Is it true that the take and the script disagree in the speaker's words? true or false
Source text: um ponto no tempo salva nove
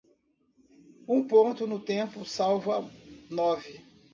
false